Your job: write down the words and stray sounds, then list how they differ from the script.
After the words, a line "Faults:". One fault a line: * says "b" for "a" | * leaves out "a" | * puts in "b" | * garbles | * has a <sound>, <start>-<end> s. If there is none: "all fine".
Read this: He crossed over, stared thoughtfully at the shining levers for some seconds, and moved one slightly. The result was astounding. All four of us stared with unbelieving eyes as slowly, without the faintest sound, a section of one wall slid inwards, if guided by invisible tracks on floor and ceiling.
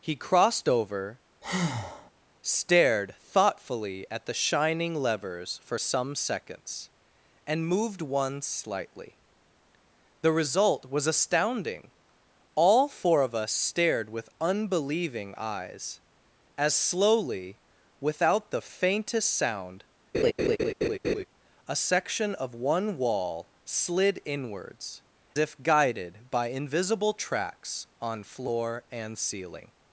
He crossed over, stared thoughtfully at the shining levers for some seconds, and moved one slightly. The result was astounding. All four of us stared with unbelieving eyes as slowly, without the faintest sound, a section of one wall slid inwards, if guided by invisible tracks on floor and ceiling.
Faults:
* has a breath, 1.4-2.1 s
* has a laugh, 20.1-21.2 s